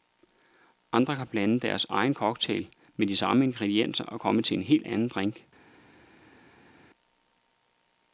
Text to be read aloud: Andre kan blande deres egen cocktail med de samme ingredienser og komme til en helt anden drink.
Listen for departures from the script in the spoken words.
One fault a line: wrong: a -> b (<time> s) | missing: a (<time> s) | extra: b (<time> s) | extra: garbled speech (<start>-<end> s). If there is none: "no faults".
no faults